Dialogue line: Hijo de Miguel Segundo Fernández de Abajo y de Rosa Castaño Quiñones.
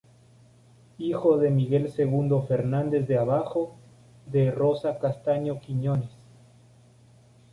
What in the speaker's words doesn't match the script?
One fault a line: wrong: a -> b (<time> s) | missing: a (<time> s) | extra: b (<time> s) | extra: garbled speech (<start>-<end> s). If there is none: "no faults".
missing: y (3.8 s)